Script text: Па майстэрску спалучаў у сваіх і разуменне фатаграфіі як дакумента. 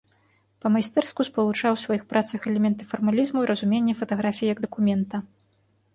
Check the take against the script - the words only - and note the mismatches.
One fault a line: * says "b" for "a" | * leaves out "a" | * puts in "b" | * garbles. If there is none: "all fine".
* puts in "працах элементы фармалізму"